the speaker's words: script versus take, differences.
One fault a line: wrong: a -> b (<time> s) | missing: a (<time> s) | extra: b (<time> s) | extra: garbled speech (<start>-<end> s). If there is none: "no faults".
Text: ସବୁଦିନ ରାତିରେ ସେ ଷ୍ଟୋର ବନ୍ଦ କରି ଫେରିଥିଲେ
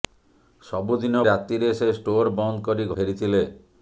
no faults